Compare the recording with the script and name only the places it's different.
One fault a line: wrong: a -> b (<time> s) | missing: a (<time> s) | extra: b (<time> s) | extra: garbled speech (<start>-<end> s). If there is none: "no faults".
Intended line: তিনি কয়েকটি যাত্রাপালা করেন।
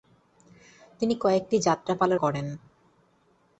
no faults